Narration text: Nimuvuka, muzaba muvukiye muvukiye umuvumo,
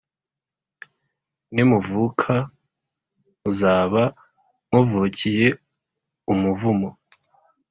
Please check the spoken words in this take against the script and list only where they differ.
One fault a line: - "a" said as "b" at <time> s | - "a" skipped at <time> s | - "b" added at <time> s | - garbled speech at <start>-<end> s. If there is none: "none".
- "muvukiye" skipped at 5.5 s